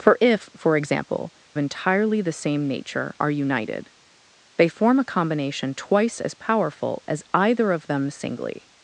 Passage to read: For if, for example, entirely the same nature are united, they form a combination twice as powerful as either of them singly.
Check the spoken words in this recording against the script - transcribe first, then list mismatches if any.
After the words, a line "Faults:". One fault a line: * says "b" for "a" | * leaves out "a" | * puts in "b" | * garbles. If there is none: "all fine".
For if, for example, entirely the same nature are united, they form a combination twice as powerful as either of them singly.
Faults:
all fine